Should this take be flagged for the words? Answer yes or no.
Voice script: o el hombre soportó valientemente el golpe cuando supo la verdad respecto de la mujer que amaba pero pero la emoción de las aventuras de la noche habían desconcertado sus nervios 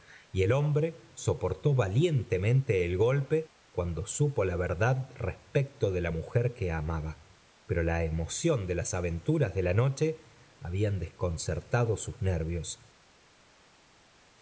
yes